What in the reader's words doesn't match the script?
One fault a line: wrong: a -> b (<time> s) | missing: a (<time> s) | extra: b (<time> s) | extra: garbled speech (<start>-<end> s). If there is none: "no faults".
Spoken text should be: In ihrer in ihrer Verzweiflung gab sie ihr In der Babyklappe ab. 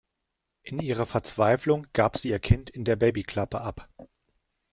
missing: in ihrer (1.1 s)
extra: Kind (2.4 s)